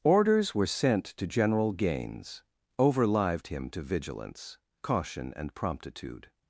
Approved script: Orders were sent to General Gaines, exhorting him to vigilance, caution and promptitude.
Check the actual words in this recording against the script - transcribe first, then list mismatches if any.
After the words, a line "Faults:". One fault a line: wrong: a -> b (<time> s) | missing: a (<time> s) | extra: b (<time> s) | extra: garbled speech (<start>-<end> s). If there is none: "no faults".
Orders were sent to General Gaines, overlived him to vigilance, caution and promptitude.
Faults:
wrong: exhorting -> overlived (2.8 s)